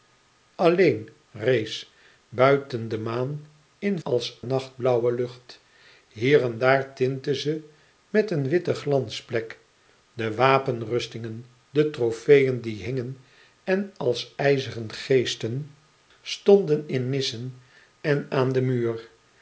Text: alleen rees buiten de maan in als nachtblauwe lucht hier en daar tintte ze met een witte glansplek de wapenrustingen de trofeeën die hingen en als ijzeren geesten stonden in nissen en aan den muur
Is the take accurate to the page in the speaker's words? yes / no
yes